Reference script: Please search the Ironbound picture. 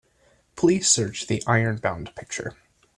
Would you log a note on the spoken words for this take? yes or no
no